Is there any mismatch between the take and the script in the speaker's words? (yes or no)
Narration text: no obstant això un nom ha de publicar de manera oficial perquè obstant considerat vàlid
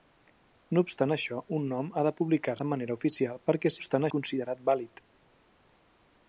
no